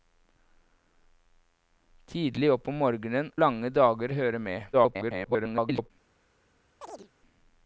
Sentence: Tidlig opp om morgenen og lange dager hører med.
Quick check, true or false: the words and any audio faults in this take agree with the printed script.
false